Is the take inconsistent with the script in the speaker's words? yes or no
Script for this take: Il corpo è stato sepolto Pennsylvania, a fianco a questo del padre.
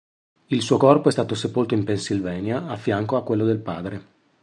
yes